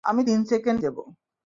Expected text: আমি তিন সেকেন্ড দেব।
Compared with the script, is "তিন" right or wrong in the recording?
right